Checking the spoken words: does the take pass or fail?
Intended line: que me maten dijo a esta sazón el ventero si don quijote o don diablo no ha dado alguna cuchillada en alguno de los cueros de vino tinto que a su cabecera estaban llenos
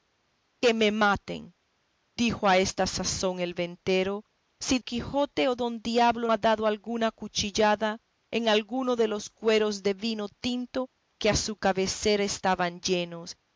fail